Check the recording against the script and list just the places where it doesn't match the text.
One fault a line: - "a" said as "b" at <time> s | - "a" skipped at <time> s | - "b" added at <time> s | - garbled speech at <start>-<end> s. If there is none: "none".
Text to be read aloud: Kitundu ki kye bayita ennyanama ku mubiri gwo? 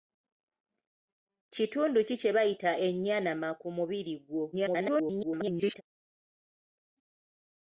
- garbled speech at 4.5-5.8 s